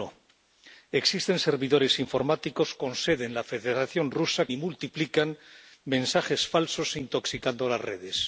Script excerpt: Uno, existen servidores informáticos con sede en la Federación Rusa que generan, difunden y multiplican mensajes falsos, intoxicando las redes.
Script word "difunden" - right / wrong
wrong